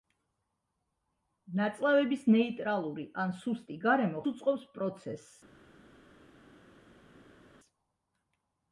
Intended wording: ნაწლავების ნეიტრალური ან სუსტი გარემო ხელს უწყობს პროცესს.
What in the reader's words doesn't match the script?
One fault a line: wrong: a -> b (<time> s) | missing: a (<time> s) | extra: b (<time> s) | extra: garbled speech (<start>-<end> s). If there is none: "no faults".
missing: ხელს (4.2 s)